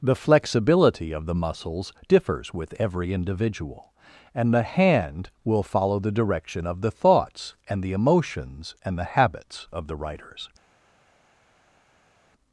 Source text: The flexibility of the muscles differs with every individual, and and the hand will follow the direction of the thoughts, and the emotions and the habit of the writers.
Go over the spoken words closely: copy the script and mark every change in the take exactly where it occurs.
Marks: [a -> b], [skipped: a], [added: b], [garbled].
The flexibility of the muscles differs with every individual, and [skipped: and] the hand will follow the direction of the thoughts, and the emotions and the [habit -> habits] of the writers.